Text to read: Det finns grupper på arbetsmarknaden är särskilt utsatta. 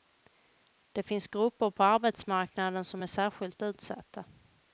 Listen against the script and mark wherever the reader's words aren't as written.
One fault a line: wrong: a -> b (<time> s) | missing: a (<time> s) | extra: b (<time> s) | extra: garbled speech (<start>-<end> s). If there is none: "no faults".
extra: som (2.8 s)